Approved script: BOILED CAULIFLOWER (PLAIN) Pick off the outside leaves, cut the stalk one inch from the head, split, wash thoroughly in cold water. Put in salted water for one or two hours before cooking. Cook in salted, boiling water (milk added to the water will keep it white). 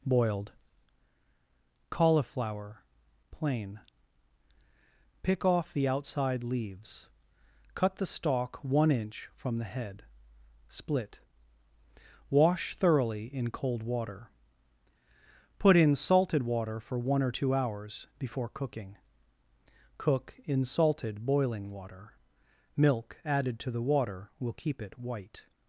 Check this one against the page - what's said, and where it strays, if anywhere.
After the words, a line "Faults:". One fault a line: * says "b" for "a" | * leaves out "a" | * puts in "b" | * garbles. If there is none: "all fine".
BOILED CAULIFLOWER (PLAIN) Pick off the outside leaves, cut the stalk one inch from the head, split, wash thoroughly in cold water. Put in salted water for one or two hours before cooking. Cook in salted, boiling water (milk added to the water will keep it white).
Faults:
all fine